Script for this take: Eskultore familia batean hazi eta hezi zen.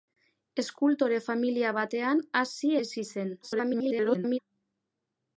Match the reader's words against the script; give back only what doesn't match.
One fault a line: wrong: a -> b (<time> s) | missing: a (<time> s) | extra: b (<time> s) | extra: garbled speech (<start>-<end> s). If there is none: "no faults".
missing: eta (2.7 s)
extra: garbled speech (3.4-4.4 s)